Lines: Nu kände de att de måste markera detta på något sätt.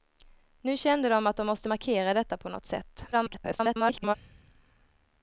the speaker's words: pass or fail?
fail